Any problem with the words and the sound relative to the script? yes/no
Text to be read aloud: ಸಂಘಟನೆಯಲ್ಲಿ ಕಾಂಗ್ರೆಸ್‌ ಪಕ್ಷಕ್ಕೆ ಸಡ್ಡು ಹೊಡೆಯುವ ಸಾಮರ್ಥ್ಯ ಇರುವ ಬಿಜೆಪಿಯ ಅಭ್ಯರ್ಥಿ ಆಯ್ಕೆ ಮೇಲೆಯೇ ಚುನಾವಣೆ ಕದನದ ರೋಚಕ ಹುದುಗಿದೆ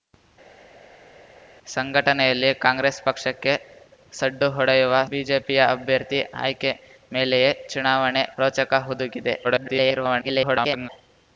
yes